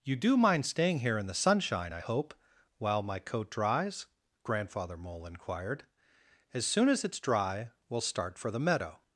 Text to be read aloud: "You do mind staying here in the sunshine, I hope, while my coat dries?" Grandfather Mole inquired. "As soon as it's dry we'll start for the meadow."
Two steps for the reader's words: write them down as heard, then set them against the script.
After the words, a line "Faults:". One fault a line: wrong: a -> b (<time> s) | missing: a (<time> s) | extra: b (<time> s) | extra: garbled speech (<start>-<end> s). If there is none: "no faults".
"You do mind staying here in the sunshine, I hope, while my coat dries?" Grandfather Mole inquired. "As soon as it's dry we'll start for the meadow."
Faults:
no faults